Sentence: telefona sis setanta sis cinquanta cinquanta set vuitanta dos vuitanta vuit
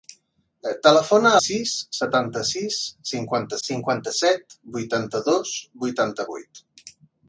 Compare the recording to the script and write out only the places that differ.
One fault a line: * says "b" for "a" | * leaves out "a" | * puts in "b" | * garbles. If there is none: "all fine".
all fine